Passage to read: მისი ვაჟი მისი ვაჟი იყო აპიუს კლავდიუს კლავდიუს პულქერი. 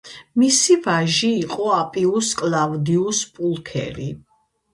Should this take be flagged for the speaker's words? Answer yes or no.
yes